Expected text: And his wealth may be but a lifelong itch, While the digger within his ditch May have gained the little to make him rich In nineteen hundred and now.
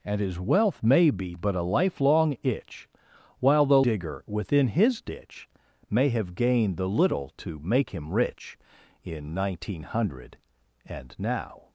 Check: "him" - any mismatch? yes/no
no